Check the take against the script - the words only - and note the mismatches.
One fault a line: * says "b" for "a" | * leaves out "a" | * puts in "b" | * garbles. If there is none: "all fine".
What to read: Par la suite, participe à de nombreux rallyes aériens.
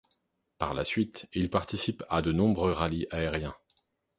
* puts in "il"